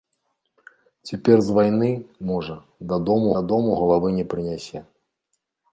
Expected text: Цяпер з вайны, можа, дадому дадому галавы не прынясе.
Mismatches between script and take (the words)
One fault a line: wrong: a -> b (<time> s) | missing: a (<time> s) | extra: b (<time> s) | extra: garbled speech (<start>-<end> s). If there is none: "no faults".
no faults